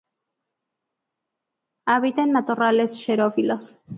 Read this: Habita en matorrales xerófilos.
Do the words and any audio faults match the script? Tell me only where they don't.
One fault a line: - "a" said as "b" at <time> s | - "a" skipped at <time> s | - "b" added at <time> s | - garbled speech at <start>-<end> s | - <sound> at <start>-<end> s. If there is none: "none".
none